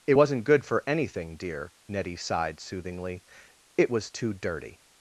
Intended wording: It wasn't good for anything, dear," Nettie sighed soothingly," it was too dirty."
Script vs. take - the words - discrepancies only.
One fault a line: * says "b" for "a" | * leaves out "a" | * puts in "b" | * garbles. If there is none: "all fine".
all fine